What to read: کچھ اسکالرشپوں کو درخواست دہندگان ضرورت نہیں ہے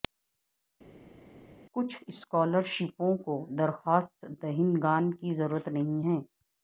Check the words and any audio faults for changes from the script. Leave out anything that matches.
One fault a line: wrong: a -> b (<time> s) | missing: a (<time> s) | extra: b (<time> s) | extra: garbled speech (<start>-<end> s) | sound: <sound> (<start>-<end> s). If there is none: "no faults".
extra: کی (5.1 s)